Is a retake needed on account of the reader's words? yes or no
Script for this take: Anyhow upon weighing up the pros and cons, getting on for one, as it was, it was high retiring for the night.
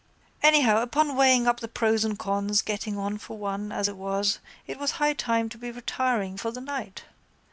yes